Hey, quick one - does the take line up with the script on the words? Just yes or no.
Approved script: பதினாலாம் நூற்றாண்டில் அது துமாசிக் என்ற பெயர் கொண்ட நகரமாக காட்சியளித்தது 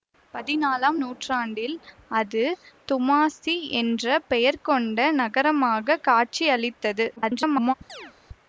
no